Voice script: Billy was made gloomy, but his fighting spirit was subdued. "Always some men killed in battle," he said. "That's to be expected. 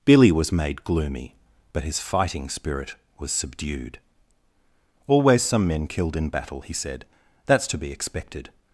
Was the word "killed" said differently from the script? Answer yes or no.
no